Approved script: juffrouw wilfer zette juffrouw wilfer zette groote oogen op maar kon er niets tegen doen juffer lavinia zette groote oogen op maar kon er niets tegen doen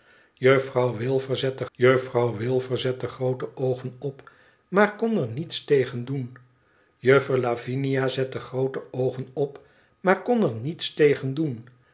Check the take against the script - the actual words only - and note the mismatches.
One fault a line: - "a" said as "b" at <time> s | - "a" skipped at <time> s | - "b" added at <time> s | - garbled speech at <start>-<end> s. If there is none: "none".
none